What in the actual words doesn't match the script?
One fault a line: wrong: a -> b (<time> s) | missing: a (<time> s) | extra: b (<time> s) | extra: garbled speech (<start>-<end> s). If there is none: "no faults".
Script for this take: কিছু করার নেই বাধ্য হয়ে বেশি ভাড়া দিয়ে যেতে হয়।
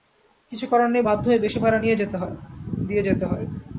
no faults